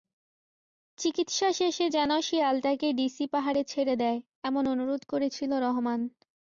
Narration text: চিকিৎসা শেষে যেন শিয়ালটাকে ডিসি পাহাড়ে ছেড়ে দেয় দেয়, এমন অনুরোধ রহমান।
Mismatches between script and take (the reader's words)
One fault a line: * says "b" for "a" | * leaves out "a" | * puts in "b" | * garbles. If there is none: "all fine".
* leaves out "দেয়"
* puts in "করেছিল"